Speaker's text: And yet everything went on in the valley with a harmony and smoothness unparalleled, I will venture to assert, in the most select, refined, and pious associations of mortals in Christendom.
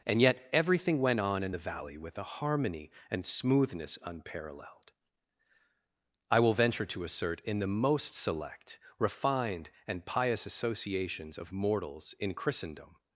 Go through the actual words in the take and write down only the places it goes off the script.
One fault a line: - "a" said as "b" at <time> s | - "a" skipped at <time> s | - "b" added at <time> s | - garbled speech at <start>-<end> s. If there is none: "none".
none